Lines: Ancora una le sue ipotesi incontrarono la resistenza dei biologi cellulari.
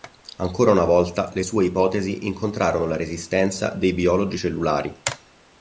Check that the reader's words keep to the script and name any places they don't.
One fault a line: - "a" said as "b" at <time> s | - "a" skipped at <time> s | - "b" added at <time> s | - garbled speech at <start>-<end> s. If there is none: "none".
- "volta" added at 0.8 s